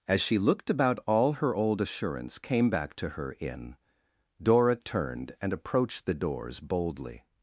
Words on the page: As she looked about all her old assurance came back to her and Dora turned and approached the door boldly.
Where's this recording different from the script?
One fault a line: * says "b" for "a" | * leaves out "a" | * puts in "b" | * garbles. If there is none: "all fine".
* says "in" for "and"
* says "doors" for "door"